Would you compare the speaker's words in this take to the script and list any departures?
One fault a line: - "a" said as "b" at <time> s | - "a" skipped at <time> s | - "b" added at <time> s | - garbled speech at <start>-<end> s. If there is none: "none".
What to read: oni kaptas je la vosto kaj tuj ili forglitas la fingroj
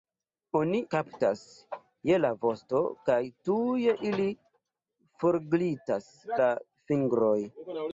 none